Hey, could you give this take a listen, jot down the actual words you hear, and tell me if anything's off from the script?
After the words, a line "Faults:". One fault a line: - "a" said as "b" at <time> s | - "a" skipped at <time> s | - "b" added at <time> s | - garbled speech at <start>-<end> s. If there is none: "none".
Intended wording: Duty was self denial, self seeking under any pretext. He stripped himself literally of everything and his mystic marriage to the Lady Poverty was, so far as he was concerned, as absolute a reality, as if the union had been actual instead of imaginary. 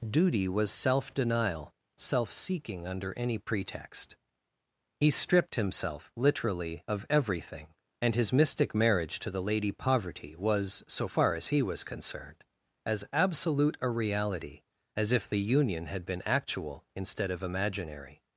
Duty was self denial, self seeking under any pretext. He stripped himself literally of everything and his mystic marriage to the Lady Poverty was, so far as he was concerned, as absolute a reality, as if the union had been actual instead of imaginary.
Faults:
none